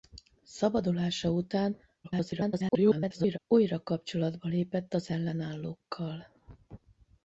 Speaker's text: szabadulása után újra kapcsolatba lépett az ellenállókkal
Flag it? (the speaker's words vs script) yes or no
yes